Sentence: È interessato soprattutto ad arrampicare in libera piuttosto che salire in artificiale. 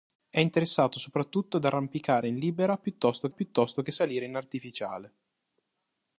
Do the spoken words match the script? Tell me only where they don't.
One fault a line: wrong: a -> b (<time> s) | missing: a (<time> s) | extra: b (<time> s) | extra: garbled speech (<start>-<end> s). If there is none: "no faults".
extra: piuttosto (3.3 s)